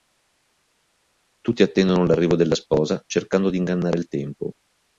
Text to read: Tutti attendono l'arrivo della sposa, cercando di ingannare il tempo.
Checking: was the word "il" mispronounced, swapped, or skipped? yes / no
no